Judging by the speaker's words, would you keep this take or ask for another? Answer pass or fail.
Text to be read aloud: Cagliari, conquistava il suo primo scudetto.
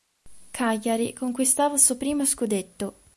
pass